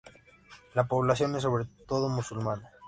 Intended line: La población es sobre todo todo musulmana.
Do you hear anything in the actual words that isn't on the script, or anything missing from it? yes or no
yes